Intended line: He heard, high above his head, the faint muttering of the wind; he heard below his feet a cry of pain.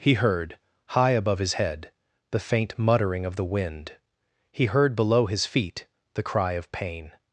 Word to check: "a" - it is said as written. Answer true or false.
false